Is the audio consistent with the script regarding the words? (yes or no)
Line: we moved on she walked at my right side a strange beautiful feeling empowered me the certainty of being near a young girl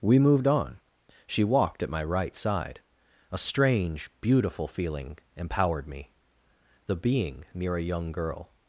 no